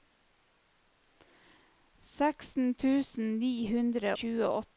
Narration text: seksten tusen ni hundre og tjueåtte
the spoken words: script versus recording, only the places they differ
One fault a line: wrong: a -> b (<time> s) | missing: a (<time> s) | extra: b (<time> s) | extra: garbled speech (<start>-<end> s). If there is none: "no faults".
missing: og (4.2 s)